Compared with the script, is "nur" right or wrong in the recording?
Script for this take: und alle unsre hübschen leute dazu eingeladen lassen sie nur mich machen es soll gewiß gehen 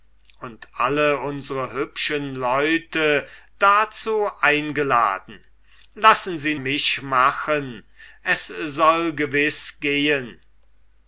wrong